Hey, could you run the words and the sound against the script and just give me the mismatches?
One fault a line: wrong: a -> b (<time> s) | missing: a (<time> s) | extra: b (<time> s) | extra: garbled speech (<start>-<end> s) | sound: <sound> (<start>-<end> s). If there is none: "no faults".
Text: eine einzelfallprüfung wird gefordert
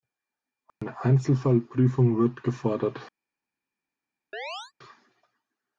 sound: dropout (0.7-0.8 s)
sound: chirp (4.3-4.7 s)